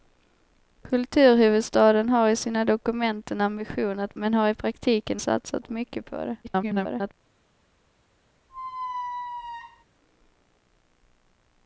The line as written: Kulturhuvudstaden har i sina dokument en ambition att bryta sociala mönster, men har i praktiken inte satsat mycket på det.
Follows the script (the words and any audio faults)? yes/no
no